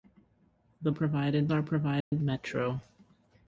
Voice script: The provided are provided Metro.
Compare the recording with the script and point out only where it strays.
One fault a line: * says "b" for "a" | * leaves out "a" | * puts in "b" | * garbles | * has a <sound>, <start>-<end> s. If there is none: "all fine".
* has a dropout, 2.0-2.1 s